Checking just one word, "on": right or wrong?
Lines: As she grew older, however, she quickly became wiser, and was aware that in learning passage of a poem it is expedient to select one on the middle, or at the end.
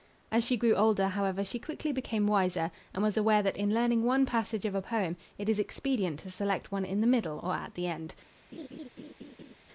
wrong